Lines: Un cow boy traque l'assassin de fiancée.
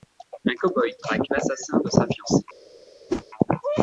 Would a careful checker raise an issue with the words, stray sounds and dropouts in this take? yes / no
yes